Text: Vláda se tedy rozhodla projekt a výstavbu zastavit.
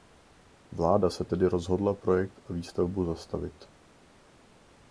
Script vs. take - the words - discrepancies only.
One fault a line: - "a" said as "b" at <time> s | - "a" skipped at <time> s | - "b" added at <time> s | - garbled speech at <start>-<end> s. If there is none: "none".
none